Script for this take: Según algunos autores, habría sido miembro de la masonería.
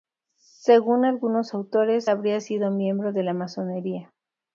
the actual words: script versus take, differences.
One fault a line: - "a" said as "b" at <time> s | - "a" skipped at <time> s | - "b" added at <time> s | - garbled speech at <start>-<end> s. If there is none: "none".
none